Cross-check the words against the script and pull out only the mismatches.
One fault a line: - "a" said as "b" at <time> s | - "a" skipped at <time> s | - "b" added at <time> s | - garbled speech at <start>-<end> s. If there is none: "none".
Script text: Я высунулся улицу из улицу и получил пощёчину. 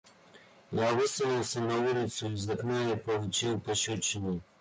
- "на" added at 1.6 s
- "улицу" said as "окна" at 2.5 s